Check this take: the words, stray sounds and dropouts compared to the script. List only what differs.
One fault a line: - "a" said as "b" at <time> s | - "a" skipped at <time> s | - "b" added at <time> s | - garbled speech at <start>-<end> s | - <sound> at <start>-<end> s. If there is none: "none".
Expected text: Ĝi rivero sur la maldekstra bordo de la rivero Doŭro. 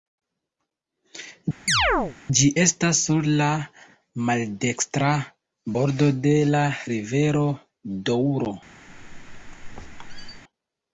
- chirp at 1.7-2.2 s
- "rivero" said as "estas" at 2.6 s
- squeak at 8.9-10.4 s